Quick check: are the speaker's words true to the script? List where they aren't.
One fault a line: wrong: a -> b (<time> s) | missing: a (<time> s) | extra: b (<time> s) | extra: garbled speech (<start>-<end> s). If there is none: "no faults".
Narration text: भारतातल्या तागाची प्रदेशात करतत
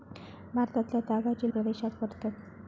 no faults